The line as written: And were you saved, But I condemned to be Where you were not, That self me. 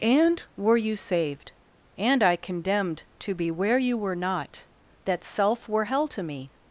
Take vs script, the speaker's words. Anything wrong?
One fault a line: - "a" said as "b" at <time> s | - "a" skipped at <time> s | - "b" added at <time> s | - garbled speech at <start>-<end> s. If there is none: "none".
- "But" said as "And" at 2.0 s
- "were hell to" added at 5.7 s